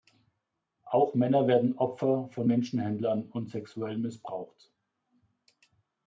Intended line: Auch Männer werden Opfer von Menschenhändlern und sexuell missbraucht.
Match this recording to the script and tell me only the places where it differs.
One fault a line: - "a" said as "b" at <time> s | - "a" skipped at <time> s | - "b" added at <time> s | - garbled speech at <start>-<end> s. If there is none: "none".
none